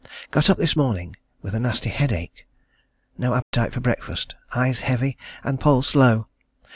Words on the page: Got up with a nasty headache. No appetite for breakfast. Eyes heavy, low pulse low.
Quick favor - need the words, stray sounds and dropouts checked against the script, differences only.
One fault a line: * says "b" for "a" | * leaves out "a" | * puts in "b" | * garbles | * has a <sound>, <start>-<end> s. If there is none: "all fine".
* puts in "this morning"
* has a dropout, 3.4-3.5 s
* says "and" for "low"